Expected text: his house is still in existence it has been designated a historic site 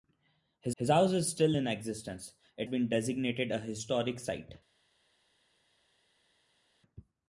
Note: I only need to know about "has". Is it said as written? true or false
false